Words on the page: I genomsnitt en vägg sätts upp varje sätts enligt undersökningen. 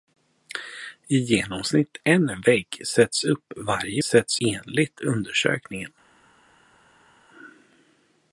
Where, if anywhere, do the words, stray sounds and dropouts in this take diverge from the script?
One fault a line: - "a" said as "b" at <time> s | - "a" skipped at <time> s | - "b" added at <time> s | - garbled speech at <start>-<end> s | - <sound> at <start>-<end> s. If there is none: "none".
none